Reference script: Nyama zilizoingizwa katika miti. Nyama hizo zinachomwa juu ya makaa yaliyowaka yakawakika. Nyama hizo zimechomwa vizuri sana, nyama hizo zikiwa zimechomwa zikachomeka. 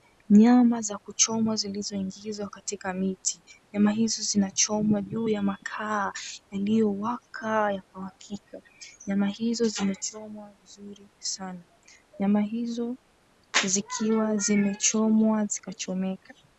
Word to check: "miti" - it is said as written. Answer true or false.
true